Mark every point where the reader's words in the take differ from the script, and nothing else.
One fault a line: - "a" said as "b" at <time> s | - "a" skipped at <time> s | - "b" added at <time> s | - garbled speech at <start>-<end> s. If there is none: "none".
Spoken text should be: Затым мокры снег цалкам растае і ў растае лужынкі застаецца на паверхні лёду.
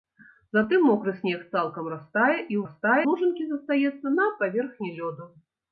none